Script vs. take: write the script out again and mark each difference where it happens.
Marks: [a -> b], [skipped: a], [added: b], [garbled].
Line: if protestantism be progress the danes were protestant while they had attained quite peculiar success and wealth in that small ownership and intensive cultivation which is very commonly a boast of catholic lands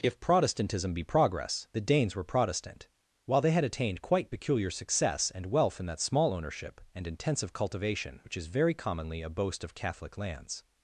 if protestantism be progress the danes were protestant while they had attained quite peculiar success and wealth in that small ownership and intensive cultivation which is very commonly a boast of catholic lands